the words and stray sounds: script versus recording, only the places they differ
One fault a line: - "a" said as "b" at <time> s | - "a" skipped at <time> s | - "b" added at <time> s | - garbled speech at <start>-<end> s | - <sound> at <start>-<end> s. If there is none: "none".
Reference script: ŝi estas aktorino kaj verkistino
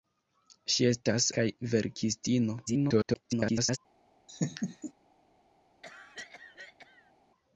- "aktorino" skipped at 1.3 s
- garbled speech at 2.7-3.8 s
- laugh at 4.3-4.9 s
- cough at 5.8-7.1 s